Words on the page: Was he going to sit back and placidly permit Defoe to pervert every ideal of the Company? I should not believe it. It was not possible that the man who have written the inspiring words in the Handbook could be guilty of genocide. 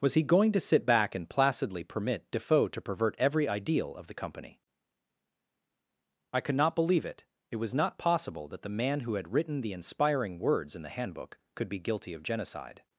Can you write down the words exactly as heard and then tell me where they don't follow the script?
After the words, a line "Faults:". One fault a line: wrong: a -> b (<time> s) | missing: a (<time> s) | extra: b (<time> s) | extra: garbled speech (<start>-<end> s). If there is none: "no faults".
Was he going to sit back and placidly permit Defoe to pervert every ideal of the Company? I could not believe it. It was not possible that the man who had written the inspiring words in the Handbook could be guilty of genocide.
Faults:
wrong: should -> could (6.4 s)
wrong: have -> had (9.2 s)